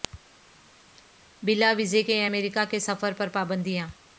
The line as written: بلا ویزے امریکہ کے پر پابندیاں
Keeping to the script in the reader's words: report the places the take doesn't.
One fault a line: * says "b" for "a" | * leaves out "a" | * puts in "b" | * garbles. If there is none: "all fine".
* puts in "کے"
* puts in "سفر"